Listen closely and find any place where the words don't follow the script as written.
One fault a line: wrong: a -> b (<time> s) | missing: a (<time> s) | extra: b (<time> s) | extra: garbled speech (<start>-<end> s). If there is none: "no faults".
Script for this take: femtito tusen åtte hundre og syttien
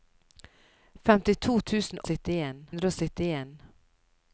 wrong: åtte -> syttien (2.1 s)